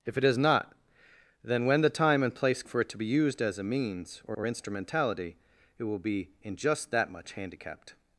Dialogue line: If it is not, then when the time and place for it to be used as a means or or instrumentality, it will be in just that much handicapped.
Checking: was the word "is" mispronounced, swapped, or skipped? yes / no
no